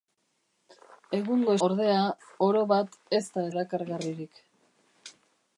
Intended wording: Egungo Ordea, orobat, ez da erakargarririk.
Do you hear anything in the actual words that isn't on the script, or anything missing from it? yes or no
no